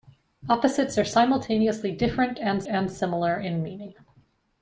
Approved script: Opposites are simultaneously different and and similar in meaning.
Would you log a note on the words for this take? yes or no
no